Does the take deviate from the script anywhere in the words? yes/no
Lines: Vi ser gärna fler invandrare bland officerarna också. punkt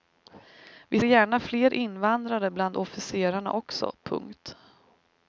yes